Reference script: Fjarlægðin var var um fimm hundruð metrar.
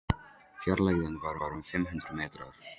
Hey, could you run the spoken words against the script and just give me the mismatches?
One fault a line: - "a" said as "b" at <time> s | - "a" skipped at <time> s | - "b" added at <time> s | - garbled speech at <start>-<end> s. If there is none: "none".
none